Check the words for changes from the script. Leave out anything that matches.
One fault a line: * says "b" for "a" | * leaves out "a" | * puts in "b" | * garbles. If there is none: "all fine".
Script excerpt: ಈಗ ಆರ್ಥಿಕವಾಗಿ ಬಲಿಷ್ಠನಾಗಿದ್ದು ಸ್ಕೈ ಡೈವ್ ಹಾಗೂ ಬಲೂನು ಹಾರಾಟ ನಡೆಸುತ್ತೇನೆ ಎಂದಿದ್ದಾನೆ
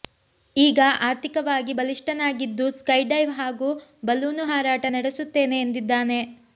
all fine